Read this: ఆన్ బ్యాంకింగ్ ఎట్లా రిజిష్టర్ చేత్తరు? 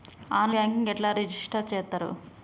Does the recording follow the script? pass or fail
pass